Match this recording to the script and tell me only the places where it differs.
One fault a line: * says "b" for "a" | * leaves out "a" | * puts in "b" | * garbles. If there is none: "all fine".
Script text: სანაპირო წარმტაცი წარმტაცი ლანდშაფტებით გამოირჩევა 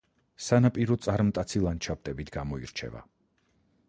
* leaves out "წარმტაცი"